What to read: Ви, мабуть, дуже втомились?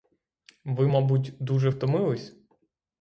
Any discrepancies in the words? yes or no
no